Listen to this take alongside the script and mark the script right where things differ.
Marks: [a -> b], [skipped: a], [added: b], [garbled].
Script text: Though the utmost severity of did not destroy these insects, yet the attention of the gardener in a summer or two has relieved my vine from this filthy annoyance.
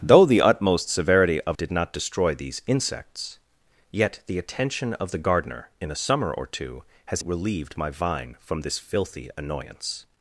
Though the utmost severity of did not destroy these insects, yet the attention of the gardener in a summer or two has relieved my vine from this filthy annoyance.